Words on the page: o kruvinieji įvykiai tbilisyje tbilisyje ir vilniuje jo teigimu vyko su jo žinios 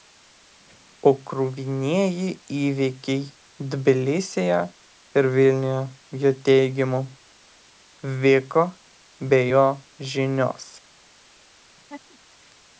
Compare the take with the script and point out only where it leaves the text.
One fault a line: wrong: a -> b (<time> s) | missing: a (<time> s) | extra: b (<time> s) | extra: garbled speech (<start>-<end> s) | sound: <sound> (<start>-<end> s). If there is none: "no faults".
missing: tbilisyje (4.6 s)
wrong: su -> be (9.3 s)
sound: laugh (11.8-12.2 s)